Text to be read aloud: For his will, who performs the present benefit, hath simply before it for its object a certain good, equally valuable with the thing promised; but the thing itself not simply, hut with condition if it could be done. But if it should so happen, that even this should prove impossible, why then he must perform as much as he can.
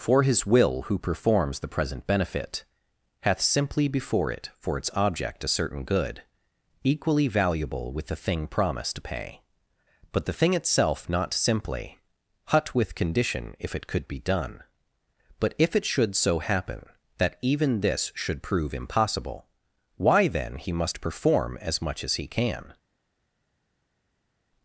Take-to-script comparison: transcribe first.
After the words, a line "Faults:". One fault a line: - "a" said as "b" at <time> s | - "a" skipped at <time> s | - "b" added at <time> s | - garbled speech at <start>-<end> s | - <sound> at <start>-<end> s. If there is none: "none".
For his will, who performs the present benefit, hath simply before it for its object a certain good, equally valuable with the thing promised; to pay but the thing itself not simply, hut with condition if it could be done. But if it should so happen, that even this should prove impossible, why then he must perform as much as he can.
Faults:
- "to pay" added at 8.9 s